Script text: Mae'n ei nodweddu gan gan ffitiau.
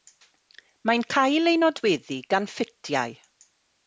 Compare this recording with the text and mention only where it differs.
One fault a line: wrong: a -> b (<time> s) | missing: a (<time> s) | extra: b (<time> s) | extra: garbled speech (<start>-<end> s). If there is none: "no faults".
extra: cael (1.1 s)
missing: gan (2.5 s)